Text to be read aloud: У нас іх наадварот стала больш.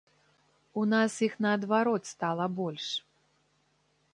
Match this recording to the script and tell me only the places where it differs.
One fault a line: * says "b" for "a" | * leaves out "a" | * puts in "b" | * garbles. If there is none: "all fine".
all fine